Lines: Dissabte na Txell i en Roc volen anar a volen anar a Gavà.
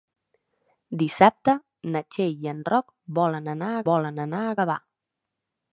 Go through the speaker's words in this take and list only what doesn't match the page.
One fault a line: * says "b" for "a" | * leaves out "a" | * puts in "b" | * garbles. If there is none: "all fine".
all fine